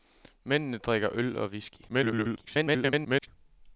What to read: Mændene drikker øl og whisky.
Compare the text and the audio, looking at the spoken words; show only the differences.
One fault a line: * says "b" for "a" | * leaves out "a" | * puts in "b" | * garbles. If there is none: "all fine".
* garbles